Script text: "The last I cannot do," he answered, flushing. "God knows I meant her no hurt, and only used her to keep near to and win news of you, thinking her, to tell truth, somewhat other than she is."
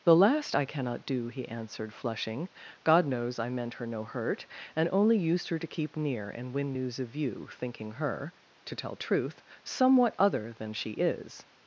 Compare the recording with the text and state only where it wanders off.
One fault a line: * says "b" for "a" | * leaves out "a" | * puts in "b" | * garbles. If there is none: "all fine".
* leaves out "to"